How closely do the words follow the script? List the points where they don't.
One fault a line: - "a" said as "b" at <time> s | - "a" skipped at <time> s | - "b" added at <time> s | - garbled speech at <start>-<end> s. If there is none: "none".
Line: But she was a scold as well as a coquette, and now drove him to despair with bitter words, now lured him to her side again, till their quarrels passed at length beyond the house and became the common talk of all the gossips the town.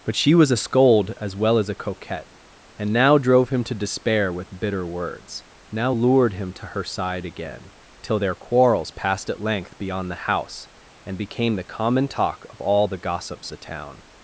none